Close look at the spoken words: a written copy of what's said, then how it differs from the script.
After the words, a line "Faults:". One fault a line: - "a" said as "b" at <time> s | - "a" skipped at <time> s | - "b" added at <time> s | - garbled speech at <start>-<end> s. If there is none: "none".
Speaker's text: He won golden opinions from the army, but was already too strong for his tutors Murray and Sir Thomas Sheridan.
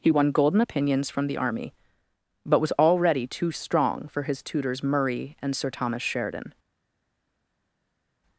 He won golden opinions from the army, but was already too strong for his tutors Murray and Sir Thomas Sheridan.
Faults:
none